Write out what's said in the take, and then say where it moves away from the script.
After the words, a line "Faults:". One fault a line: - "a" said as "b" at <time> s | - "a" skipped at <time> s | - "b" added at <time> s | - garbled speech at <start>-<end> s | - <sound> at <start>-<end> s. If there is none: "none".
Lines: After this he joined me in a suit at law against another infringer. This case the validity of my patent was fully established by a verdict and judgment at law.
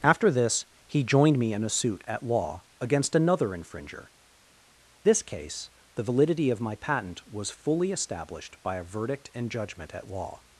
After this he joined me in a suit at law against another infringer. This case the validity of my patent was fully established by a verdict and judgment at law.
Faults:
none